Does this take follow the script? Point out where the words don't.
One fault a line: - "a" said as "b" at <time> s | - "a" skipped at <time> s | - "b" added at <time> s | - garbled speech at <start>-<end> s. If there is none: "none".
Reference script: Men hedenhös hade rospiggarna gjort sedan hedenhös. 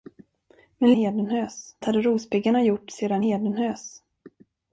none